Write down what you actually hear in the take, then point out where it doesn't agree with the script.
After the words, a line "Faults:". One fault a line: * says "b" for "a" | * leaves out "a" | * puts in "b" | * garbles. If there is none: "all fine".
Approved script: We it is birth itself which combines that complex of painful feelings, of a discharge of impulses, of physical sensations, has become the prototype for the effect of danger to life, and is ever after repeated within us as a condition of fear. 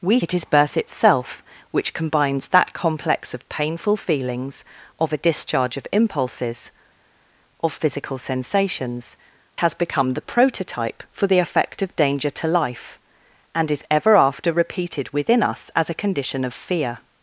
We it is birth itself which combines that complex of painful feelings, of a discharge of impulses, of physical sensations, has become the prototype for the effect of danger to life, and is ever after repeated within us as a condition of fear.
Faults:
all fine